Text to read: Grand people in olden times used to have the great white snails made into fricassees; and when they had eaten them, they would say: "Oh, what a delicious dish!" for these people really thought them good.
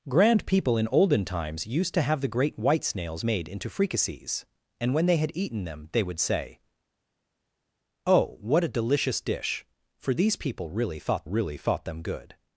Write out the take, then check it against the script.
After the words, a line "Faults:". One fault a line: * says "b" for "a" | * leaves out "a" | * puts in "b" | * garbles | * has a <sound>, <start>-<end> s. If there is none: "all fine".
Grand people in olden times used to have the great white snails made into fricassees; and when they had eaten them, they would say: "Oh, what a delicious dish!" for these people really thought really thought them good.
Faults:
* puts in "really thought"